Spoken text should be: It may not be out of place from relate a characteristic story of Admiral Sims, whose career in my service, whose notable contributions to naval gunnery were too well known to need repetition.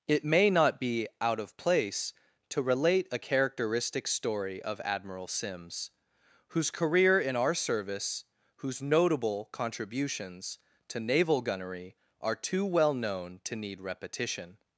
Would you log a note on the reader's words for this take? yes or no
yes